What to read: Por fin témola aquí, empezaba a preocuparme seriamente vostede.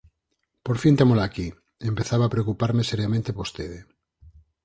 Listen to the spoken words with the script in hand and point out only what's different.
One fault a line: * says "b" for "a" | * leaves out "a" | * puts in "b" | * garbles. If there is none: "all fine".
all fine